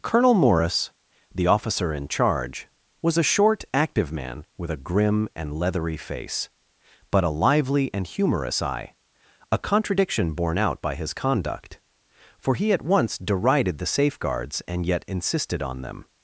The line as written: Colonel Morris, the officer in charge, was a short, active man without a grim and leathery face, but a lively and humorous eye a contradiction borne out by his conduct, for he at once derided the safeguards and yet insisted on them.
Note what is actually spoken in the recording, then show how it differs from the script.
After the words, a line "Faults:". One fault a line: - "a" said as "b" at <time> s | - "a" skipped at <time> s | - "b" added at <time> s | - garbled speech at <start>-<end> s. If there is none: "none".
Colonel Morris, the officer in charge, was a short, active man with a grim and leathery face, but a lively and humorous eye a contradiction borne out by his conduct, for he at once derided the safeguards and yet insisted on them.
Faults:
- "without" said as "with" at 4.6 s